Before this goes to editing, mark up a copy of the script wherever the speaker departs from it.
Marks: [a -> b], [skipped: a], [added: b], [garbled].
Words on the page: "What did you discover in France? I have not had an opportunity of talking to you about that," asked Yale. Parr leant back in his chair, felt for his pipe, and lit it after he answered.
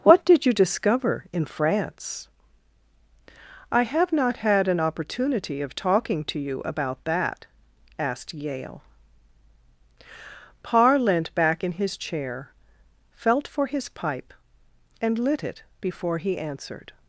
"What did you discover in France? I have not had an opportunity of talking to you about that," asked Yale. Parr leant back in his chair, felt for his pipe, and lit it [after -> before] he answered.